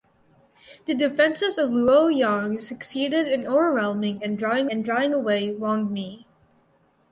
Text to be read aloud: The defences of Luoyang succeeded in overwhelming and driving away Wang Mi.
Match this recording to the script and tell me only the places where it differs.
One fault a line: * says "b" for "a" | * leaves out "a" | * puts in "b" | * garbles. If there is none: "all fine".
* puts in "and driving"